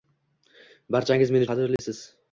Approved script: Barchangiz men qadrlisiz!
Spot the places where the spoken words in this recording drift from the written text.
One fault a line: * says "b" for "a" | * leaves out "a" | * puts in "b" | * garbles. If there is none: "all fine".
all fine